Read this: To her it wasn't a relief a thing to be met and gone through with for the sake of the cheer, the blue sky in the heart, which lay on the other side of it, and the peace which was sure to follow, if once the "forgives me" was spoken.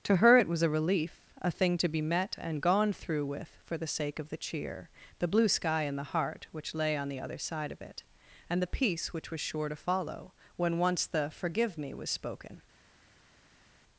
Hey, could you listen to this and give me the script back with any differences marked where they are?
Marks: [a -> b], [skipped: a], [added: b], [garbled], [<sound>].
To her it [wasn't -> was] a relief a thing to be met and gone through with for the sake of the cheer, the blue sky in the heart, which lay on the other side of it, and the peace which was sure to follow, [if -> when] once the ["forgives -> forgive] me" was spoken.